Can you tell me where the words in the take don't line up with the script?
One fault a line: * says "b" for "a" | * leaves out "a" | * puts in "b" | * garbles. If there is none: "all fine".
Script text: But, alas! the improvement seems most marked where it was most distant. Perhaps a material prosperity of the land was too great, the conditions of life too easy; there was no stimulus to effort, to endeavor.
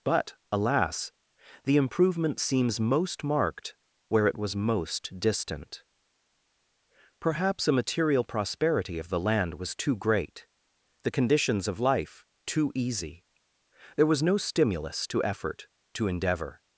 all fine